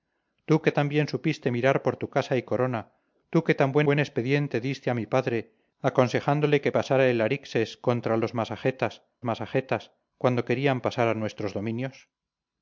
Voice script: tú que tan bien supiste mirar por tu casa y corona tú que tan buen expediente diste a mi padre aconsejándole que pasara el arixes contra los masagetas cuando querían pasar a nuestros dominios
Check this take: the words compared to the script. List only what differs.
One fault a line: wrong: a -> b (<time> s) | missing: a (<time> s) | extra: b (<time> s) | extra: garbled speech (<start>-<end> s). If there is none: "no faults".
extra: buen (3.8 s)
extra: masagetas (9.2 s)